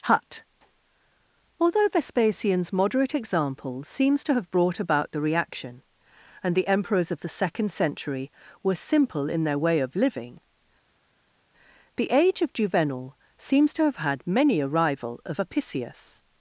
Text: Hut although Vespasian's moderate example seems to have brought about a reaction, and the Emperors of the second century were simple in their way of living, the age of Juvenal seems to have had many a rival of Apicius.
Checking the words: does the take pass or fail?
fail